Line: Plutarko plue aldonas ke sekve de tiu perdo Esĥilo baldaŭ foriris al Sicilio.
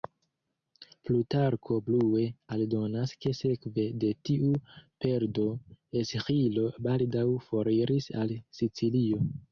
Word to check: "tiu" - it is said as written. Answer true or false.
true